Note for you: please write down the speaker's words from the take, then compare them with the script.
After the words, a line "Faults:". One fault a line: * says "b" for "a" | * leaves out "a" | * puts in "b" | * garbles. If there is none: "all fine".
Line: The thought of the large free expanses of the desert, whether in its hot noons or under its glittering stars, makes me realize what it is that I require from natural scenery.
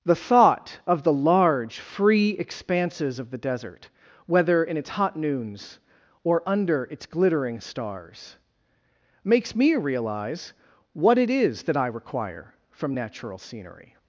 The thought of the large free expanses of the desert, whether in its hot noons or under its glittering stars, makes me realize what it is that I require from natural scenery.
Faults:
all fine